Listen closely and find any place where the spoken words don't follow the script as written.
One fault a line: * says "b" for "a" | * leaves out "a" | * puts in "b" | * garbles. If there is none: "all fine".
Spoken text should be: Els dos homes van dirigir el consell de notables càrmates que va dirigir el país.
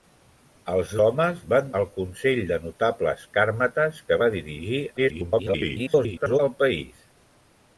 * leaves out "dos"
* leaves out "dirigir"
* garbles